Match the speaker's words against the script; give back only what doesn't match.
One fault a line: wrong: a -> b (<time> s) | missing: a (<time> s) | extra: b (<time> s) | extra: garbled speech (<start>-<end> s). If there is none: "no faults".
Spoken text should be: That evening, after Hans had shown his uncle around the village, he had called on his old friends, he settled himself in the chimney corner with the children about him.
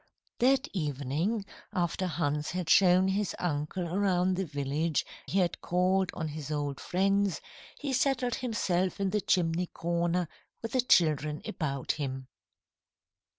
no faults